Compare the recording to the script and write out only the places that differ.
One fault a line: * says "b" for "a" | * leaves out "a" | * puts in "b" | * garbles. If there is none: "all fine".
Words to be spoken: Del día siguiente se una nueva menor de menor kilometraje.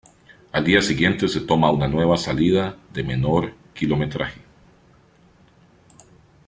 * says "Al" for "Del"
* puts in "toma"
* says "salida" for "menor"